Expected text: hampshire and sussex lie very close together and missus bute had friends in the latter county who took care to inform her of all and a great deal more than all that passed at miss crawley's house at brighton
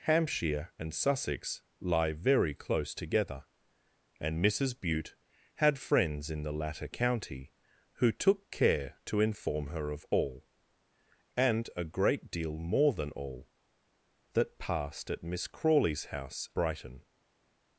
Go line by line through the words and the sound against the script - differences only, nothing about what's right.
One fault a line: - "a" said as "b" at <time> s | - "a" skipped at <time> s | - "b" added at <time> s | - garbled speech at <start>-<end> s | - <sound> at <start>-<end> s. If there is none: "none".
- "at" skipped at 16.5 s